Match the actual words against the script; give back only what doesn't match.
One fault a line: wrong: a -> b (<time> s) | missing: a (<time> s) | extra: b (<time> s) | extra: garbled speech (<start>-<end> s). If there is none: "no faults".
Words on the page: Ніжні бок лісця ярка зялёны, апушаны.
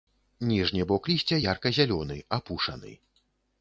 no faults